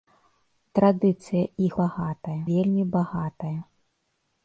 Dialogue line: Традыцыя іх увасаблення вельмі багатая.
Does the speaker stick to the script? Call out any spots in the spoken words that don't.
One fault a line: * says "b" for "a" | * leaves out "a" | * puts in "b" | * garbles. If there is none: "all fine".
* says "багатая" for "увасаблення"